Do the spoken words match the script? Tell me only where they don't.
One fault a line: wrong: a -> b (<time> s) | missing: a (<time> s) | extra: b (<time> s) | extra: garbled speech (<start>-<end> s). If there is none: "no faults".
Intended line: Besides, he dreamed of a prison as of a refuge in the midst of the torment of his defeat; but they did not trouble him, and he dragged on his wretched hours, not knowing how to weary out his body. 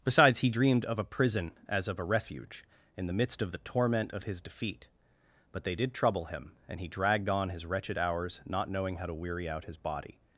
missing: not (5.9 s)